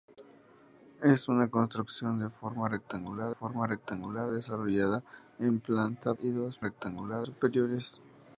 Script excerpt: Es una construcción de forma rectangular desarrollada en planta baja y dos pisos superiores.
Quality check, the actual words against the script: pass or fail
fail